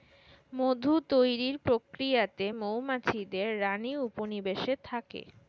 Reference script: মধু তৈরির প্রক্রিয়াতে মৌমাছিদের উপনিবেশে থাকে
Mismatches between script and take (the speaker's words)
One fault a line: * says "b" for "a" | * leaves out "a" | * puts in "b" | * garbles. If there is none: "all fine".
* puts in "রানী"